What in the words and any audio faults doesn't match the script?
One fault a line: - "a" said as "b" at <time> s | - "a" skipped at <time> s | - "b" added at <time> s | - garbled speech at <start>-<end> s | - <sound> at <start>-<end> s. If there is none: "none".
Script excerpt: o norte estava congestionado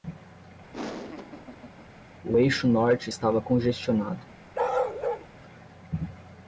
- laugh at 0.7-1.9 s
- "eixo" added at 2.4 s
- bark at 4.5-5.3 s